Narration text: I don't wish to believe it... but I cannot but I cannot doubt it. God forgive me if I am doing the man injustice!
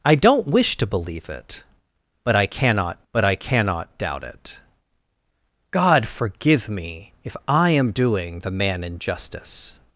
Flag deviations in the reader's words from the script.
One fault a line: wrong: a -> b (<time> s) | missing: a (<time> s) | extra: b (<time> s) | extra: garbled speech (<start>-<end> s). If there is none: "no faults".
no faults